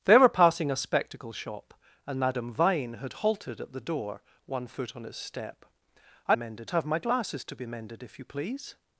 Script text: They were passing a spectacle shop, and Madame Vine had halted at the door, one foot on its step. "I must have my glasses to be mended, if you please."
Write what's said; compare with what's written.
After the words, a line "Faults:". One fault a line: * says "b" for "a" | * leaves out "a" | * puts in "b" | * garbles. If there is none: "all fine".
They were passing a spectacle shop, and Madame Vine had halted at the door, one foot on its step. "I mended have my glasses to be mended, if you please."
Faults:
* says "mended" for "must"